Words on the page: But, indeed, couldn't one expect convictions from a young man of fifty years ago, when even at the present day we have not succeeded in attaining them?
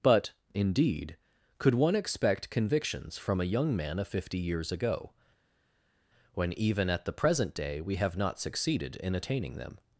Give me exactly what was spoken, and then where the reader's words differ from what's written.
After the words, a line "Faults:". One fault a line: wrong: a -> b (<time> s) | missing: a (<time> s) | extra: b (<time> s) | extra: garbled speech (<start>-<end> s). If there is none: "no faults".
But, indeed, could one expect convictions from a young man of fifty years ago, when even at the present day we have not succeeded in attaining them?
Faults:
wrong: couldn't -> could (1.6 s)